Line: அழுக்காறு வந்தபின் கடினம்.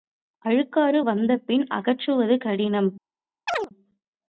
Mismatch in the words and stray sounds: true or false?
true